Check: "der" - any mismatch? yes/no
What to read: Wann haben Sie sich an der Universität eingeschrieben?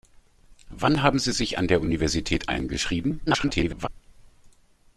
no